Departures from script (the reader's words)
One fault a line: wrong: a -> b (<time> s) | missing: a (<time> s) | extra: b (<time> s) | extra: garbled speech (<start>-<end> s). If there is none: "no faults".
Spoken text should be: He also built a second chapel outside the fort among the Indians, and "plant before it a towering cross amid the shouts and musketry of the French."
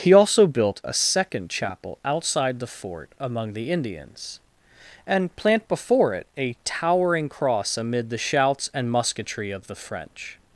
no faults